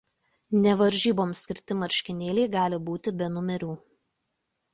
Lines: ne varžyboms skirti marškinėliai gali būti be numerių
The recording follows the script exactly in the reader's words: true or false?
true